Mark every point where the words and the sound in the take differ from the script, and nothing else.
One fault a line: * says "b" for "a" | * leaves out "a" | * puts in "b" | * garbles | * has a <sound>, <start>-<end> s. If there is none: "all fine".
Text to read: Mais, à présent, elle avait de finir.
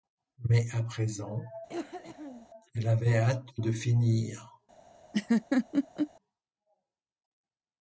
* has a cough, 1.7-2.5 s
* puts in "hâte"
* has a laugh, 5.1-6.1 s